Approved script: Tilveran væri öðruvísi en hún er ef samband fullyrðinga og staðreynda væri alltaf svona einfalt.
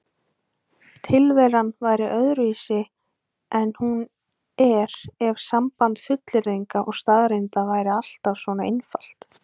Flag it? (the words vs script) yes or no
no